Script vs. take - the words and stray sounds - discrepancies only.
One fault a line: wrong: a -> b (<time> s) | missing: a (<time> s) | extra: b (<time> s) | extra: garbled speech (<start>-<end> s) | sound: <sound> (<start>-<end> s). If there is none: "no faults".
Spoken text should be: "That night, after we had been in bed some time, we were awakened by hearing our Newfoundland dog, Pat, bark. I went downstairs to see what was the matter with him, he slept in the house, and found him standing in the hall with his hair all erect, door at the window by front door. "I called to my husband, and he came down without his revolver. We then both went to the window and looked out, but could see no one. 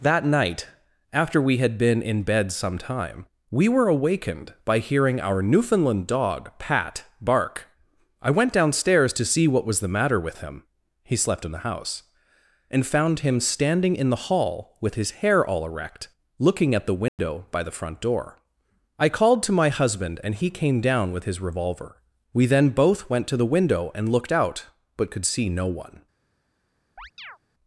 wrong: door -> looking (16.4 s)
sound: dropout (17.1-17.2 s)
extra: the (17.6 s)
wrong: without -> with (21.1 s)
sound: chirp (27.0-27.4 s)